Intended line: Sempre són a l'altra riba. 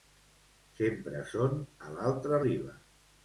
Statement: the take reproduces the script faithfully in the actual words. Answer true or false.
true